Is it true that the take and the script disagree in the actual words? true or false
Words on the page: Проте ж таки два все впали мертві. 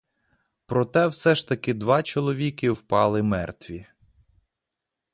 true